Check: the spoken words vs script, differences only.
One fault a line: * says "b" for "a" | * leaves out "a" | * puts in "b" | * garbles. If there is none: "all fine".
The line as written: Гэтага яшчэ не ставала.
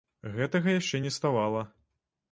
all fine